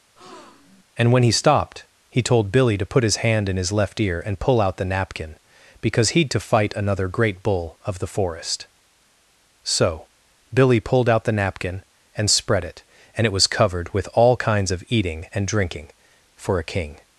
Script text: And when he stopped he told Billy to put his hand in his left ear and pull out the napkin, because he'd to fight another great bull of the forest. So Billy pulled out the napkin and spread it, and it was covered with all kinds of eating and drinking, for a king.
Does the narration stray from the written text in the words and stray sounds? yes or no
yes